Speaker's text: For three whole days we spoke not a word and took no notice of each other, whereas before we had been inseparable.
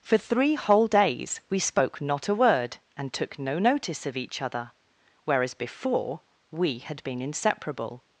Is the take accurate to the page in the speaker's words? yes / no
yes